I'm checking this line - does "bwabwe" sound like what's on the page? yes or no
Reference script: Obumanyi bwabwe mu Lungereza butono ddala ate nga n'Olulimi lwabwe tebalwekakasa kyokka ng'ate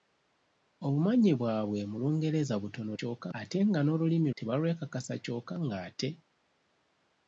yes